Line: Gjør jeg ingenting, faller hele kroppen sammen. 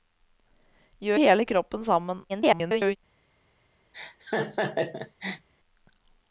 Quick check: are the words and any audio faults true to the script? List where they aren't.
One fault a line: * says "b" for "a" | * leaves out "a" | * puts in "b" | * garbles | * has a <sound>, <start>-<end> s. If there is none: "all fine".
* leaves out "jeg ingenting faller"
* garbles
* has a laugh, 3.9-5.5 s